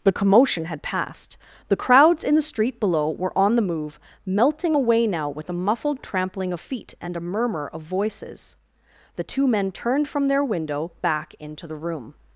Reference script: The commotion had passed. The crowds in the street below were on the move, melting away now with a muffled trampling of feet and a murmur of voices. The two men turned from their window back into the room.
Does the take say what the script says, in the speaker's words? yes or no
yes